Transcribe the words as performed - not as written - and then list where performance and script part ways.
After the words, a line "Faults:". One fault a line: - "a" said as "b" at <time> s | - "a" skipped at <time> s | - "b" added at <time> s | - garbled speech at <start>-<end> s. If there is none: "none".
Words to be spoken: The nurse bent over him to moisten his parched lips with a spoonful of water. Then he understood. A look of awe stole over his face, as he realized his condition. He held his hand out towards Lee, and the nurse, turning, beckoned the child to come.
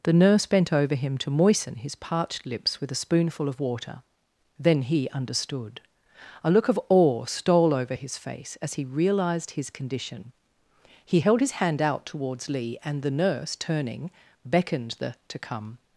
The nurse bent over him to moisten his parched lips with a spoonful of water. Then he understood. A look of awe stole over his face, as he realized his condition. He held his hand out towards Lee, and the nurse, turning, beckoned the to come.
Faults:
- "child" skipped at 15.2 s